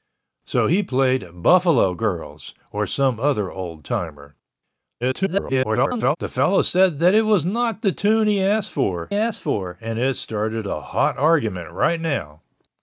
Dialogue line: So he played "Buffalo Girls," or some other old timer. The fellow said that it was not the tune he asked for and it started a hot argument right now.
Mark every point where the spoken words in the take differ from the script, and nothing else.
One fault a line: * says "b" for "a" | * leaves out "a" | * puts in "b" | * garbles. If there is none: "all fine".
* garbles
* puts in "asked for"